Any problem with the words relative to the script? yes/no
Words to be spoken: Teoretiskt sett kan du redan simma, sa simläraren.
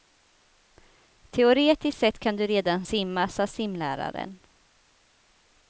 no